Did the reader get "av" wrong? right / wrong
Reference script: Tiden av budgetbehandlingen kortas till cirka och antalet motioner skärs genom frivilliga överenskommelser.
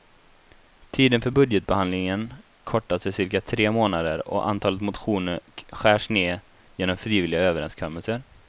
wrong